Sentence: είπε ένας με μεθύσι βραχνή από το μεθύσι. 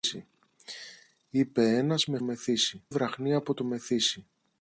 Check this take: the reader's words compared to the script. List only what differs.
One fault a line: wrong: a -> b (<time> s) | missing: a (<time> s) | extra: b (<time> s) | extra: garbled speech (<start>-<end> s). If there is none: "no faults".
no faults